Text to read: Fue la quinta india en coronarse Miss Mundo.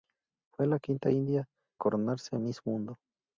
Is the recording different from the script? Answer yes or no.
yes